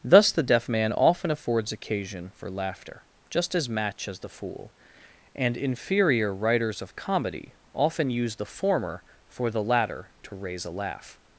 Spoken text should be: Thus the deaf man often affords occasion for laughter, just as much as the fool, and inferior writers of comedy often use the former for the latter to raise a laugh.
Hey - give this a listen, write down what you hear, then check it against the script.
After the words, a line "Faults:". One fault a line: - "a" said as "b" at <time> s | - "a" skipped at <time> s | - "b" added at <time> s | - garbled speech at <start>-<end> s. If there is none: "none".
Thus the deaf man often affords occasion for laughter, just as match as the fool, and inferior writers of comedy often use the former for the latter to raise a laugh.
Faults:
- "much" said as "match" at 3.7 s